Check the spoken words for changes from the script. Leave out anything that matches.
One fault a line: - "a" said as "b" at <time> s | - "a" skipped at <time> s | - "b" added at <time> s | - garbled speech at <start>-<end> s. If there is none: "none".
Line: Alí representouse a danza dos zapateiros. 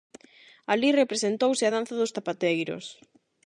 none